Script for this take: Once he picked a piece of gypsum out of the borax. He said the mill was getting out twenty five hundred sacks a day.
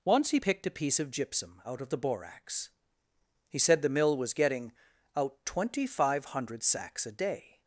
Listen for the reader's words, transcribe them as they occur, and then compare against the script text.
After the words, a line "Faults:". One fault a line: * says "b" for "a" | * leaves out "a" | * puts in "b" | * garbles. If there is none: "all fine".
Once he picked a piece of gypsum out of the borax. He said the mill was getting out twenty five hundred sacks a day.
Faults:
all fine